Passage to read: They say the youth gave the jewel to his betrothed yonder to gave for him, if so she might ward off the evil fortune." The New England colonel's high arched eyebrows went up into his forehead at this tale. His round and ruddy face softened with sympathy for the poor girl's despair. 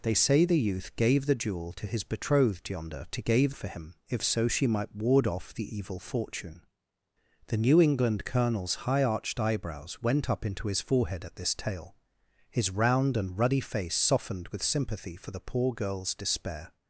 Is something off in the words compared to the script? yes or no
no